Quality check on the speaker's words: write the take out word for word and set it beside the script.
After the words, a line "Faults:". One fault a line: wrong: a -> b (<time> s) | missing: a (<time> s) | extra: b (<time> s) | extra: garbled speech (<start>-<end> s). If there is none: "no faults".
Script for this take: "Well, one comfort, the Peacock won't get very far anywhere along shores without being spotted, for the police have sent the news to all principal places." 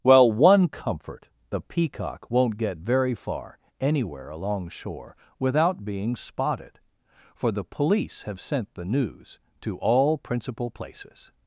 "Well, one comfort, the Peacock won't get very far anywhere along shore without being spotted, for the police have sent the news to all principal places."
Faults:
wrong: shores -> shore (4.7 s)